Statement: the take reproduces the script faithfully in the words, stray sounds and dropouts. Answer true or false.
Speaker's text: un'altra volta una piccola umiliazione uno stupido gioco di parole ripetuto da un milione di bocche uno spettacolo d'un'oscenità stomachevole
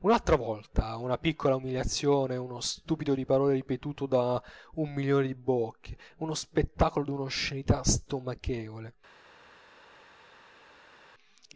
false